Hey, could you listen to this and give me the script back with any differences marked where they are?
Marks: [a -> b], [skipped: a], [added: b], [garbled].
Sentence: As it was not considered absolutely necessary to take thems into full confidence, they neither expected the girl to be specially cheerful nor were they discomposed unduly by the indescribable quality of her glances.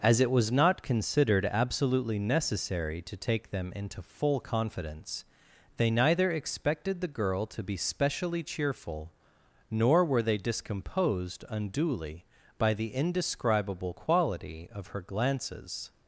As it was not considered absolutely necessary to take [thems -> them] into full confidence, they neither expected the girl to be specially cheerful nor were they discomposed unduly by the indescribable quality of her glances.